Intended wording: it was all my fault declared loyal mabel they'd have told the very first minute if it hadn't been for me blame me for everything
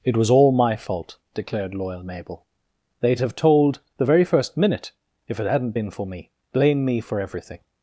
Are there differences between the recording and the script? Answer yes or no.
no